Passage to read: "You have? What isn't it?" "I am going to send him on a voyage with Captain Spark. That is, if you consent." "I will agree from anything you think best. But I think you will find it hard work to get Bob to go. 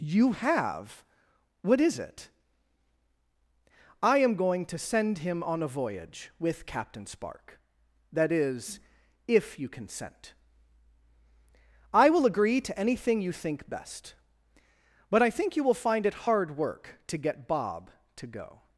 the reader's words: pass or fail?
fail